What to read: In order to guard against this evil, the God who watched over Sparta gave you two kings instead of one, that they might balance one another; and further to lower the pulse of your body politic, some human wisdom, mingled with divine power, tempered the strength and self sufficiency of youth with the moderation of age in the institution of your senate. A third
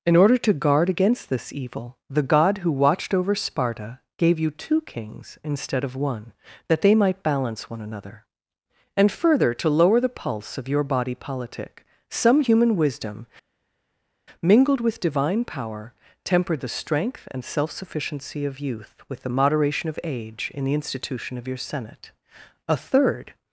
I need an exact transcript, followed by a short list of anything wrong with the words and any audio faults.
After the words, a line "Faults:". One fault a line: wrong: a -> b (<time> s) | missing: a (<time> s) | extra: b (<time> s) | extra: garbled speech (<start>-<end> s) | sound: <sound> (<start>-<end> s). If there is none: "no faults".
In order to guard against this evil, the God who watched over Sparta gave you two kings instead of one, that they might balance one another; and further to lower the pulse of your body politic, some human wisdom, mingled with divine power, tempered the strength and self sufficiency of youth with the moderation of age in the institution of your senate. A third
Faults:
no faults